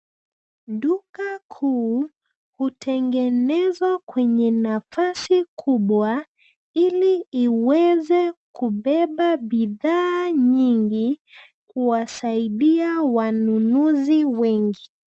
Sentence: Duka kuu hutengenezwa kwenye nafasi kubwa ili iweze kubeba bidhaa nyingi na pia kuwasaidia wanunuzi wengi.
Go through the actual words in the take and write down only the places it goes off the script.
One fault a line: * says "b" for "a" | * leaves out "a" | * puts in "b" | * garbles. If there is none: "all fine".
* leaves out "na pia"